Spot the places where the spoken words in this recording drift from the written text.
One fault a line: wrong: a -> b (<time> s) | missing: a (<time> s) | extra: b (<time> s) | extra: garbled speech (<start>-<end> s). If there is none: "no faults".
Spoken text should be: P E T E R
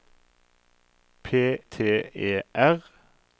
missing: E (1.3 s)